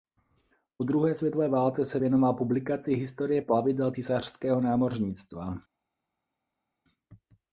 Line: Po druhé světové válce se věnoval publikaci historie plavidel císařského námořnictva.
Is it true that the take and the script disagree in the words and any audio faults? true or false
false